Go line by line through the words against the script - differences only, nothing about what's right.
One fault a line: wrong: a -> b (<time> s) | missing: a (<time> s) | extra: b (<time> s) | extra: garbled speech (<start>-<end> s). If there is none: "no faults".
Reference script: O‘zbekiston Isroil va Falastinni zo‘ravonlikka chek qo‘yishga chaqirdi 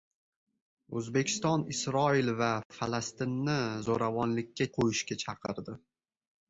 missing: chek (4.7 s)